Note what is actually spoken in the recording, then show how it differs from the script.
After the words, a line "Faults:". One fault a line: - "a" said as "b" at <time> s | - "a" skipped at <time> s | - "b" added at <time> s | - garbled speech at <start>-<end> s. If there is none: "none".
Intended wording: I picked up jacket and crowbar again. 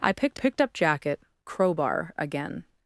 I picked picked up jacket crowbar again.
Faults:
- "picked" added at 0.3 s
- "and" skipped at 1.2 s